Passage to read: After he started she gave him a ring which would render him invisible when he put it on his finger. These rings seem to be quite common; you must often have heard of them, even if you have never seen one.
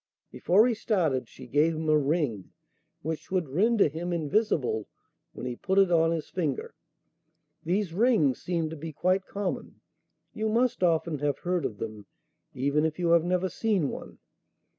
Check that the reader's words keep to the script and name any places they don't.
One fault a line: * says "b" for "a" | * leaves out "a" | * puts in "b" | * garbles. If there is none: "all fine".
* says "Before" for "After"